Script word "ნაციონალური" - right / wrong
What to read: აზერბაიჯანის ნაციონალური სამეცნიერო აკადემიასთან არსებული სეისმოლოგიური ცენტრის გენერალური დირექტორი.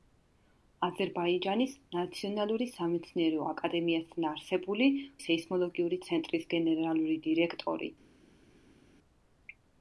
right